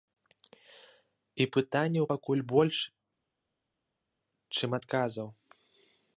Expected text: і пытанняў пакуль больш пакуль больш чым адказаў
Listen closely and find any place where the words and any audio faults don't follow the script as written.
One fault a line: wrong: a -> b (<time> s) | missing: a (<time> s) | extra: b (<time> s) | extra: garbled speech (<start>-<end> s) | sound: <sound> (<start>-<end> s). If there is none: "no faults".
missing: пакуль больш (2.8 s)